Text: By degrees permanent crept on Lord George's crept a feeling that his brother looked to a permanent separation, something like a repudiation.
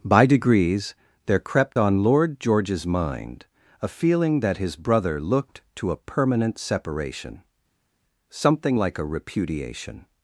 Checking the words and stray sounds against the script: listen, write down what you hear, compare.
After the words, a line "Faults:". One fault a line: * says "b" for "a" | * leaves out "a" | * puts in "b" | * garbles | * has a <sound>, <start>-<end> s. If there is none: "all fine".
By degrees there crept on Lord George's mind a feeling that his brother looked to a permanent separation, something like a repudiation.
Faults:
* says "there" for "permanent"
* says "mind" for "crept"